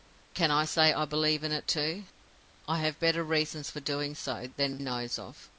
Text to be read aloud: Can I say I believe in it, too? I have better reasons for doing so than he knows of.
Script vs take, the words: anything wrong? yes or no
yes